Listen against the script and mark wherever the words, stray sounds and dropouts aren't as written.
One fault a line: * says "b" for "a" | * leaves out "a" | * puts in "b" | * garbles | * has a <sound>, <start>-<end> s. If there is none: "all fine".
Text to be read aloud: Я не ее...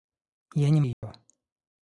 * has a dropout, 0.9-1.0 s